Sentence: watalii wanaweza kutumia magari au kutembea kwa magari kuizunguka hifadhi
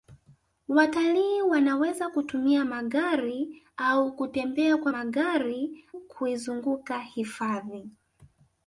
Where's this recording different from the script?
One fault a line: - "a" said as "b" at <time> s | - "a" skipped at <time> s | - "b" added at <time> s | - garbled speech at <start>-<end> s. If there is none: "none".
none